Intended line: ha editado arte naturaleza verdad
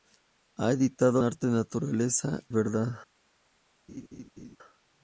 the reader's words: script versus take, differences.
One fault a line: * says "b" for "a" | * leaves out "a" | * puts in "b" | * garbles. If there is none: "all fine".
all fine